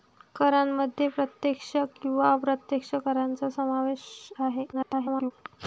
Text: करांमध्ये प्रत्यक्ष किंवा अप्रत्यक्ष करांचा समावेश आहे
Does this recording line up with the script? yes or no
no